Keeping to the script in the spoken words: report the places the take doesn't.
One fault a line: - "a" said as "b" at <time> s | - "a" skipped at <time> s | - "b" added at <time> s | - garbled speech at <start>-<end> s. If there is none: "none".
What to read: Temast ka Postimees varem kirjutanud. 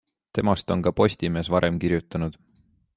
- "on" added at 0.7 s